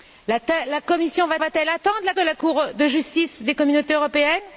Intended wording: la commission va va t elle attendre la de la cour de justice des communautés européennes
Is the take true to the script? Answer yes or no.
yes